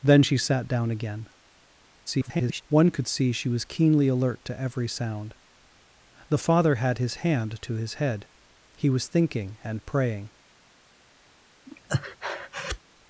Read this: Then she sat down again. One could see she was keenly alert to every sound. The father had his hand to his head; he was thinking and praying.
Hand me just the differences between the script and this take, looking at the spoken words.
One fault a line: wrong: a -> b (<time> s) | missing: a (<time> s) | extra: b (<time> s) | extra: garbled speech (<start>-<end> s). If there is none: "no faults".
extra: garbled speech (2.1-2.6 s)